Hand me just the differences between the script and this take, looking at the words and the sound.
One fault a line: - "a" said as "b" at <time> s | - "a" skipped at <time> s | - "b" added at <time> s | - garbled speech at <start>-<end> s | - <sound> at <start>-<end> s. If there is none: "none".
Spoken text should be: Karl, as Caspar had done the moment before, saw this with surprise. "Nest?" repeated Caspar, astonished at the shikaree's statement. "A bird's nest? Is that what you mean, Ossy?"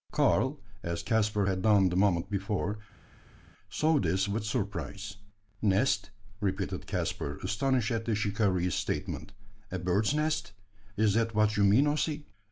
none